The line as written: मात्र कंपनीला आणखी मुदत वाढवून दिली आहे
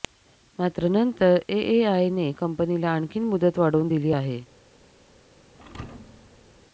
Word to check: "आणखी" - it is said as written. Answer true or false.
true